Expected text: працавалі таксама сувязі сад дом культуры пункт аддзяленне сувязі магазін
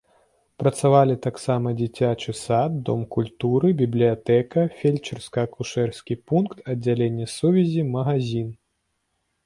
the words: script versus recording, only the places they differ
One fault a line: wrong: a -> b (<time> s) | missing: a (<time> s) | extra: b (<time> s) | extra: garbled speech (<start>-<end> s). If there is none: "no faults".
wrong: сувязі -> дзіцячы (1.8 s)
extra: бібліятэка фельчарска акушэрскі (3.8 s)